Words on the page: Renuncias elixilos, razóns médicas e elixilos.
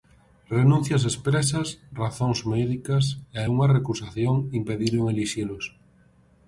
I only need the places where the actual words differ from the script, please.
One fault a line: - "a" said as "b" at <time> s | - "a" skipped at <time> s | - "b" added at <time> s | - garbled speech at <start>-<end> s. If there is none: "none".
- "elixilos" said as "expresas" at 1.1 s
- "unha recusación impediron" added at 3.5 s